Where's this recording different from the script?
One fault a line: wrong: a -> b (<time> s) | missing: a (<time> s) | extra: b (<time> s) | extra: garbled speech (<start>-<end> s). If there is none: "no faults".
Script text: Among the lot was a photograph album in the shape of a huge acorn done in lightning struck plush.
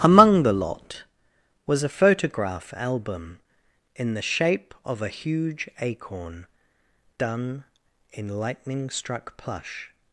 no faults